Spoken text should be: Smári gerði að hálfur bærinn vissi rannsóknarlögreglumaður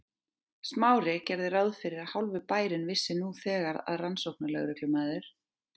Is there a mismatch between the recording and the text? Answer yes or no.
yes